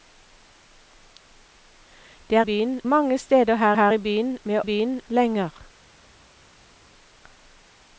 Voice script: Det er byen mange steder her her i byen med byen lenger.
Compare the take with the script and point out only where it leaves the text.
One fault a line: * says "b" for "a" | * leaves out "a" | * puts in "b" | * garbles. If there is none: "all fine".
all fine